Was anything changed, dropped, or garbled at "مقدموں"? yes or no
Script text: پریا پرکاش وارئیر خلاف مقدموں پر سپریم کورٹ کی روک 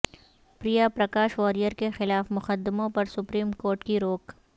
no